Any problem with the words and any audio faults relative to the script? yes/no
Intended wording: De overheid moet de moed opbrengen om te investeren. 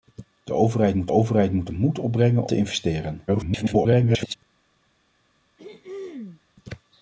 yes